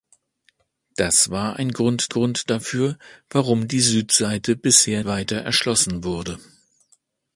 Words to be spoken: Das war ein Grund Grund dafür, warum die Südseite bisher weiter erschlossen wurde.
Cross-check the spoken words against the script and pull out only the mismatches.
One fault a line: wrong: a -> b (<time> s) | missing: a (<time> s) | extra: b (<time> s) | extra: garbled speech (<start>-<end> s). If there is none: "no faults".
no faults